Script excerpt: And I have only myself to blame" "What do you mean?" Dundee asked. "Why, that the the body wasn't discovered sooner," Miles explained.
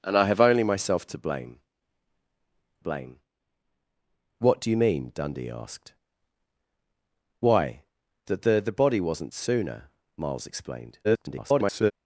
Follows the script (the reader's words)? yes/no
no